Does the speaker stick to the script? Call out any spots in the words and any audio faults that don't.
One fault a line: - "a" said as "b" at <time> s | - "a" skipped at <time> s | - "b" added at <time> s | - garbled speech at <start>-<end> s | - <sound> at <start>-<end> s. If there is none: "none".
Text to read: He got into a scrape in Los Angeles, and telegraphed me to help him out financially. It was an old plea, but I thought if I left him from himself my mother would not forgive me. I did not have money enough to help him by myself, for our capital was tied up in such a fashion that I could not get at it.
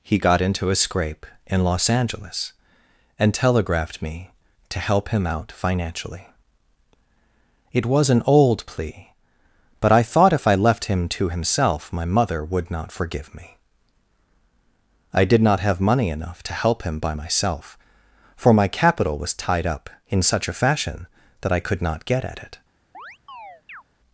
- "from" said as "to" at 11.1 s
- "our" said as "my" at 18.5 s
- chirp at 22.9-23.8 s